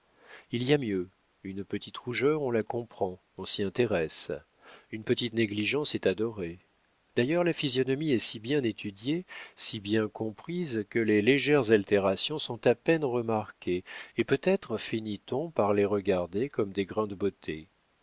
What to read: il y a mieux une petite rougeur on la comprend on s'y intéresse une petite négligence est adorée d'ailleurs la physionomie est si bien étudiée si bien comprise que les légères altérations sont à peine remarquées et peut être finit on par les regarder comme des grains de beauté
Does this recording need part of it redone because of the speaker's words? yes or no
no